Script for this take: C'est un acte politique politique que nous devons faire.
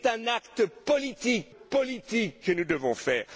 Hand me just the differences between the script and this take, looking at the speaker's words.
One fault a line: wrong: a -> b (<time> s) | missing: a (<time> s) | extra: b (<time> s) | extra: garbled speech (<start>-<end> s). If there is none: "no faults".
no faults